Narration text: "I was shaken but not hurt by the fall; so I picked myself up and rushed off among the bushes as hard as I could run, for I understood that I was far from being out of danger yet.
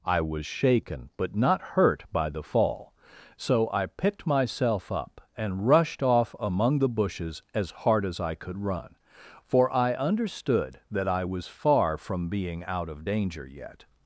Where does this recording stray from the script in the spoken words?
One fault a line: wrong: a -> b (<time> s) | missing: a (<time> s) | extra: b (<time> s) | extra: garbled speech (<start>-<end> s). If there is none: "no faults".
no faults